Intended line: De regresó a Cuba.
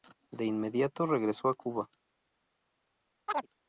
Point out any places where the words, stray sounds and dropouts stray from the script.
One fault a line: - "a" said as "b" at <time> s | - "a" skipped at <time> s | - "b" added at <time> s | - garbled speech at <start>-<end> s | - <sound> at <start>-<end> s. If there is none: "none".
- "inmediato" added at 0.5 s
- chirp at 3.3-3.5 s